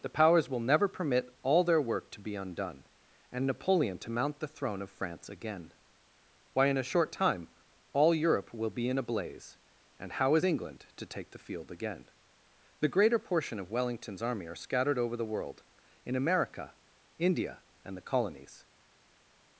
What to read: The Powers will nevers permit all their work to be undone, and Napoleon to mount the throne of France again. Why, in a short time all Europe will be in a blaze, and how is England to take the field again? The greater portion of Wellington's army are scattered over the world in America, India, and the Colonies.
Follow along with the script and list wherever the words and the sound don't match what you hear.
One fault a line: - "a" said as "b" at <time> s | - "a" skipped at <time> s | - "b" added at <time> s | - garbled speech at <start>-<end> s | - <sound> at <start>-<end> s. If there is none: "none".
- "nevers" said as "never" at 0.6 s